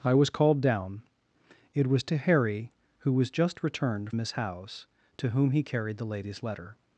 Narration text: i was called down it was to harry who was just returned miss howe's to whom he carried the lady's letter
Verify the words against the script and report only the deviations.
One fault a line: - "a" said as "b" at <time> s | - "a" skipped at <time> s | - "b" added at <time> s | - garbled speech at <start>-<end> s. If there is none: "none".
none